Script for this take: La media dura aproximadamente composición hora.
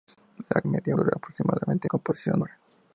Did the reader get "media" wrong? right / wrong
right